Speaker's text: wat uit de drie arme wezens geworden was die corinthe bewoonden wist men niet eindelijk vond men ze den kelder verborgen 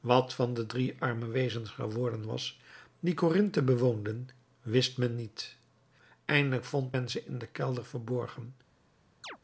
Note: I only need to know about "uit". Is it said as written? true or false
false